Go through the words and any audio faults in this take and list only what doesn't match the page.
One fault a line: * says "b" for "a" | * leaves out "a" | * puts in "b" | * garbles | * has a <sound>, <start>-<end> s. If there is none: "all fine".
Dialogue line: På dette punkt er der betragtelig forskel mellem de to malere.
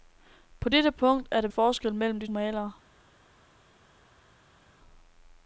* leaves out "betragtelig"
* leaves out "to"